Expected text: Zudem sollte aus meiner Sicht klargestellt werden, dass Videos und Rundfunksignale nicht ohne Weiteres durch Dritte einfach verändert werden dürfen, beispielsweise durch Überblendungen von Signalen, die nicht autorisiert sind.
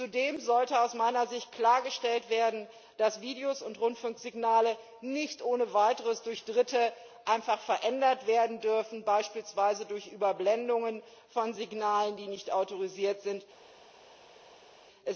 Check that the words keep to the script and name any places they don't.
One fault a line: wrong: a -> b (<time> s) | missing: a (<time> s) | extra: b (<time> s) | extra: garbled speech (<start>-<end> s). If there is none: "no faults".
no faults